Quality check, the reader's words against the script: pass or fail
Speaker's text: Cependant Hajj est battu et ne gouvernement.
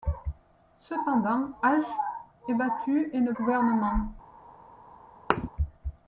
pass